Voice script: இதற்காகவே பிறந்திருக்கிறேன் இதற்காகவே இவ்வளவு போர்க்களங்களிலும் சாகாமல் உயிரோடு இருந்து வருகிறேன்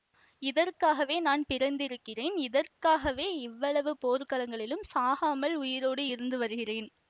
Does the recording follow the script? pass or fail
fail